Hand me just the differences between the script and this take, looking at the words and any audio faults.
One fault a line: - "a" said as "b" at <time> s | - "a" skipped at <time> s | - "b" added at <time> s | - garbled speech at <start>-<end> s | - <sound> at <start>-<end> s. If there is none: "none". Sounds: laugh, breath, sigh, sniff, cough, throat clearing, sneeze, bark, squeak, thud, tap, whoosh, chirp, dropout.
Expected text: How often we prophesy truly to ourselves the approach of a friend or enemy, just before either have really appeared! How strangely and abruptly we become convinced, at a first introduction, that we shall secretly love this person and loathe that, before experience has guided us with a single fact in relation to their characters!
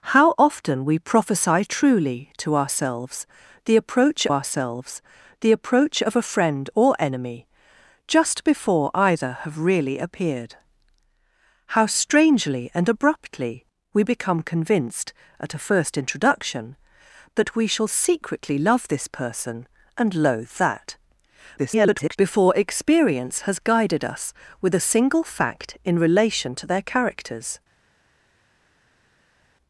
- "ourselves the approach" added at 4.3 s
- garbled speech at 21.6-22.2 s